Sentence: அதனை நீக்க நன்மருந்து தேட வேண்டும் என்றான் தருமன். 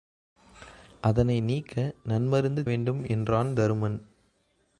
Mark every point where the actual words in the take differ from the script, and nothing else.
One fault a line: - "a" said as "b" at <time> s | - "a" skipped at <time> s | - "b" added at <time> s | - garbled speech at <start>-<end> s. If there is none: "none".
- "தேட" skipped at 2.7 s